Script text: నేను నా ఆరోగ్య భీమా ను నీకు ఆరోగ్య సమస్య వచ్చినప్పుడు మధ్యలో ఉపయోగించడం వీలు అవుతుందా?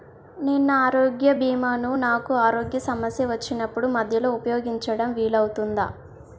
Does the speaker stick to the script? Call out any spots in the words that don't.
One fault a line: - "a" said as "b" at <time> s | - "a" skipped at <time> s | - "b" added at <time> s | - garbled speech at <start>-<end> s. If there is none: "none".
- "నీకు" said as "నాకు" at 2.0 s